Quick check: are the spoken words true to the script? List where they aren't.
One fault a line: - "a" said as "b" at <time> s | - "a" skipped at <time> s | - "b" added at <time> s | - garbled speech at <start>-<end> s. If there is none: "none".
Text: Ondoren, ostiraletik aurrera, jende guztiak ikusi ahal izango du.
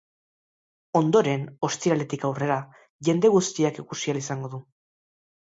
none